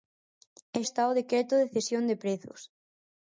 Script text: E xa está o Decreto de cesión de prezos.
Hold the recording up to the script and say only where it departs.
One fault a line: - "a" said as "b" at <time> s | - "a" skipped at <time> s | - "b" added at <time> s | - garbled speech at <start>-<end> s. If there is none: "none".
- "xa" skipped at 0.8 s